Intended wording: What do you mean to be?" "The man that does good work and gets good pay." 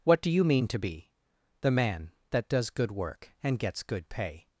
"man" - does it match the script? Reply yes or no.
yes